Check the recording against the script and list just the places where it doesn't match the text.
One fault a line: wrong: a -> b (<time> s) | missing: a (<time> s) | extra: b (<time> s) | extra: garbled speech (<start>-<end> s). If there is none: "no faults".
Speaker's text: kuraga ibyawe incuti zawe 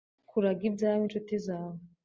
no faults